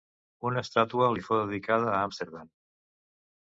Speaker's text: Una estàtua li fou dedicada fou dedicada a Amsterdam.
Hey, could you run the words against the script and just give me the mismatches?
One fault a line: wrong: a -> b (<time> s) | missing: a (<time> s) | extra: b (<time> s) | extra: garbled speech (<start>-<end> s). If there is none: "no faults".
missing: fou dedicada (1.9 s)